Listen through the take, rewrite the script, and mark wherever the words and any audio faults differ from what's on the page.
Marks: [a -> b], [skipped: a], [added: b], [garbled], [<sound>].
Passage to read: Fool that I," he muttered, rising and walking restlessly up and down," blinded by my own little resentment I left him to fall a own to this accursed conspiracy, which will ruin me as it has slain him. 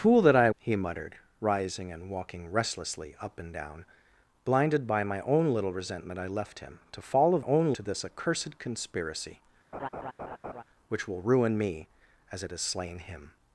Fool that I," he muttered, rising and walking restlessly up and down," blinded by my own little resentment I left him to fall a own to this accursed conspiracy, [laugh] which will ruin me as it has slain him.